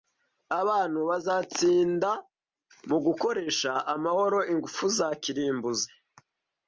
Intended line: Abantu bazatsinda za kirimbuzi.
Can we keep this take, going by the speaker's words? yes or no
no